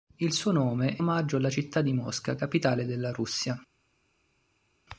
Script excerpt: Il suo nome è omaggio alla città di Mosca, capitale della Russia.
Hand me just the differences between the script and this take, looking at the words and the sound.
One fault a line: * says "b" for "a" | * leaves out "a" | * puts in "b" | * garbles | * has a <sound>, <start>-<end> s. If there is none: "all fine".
all fine